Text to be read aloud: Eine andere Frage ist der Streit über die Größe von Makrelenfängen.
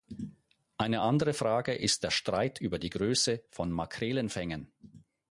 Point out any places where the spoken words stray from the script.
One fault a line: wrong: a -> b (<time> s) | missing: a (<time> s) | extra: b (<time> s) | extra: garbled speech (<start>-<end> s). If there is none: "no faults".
no faults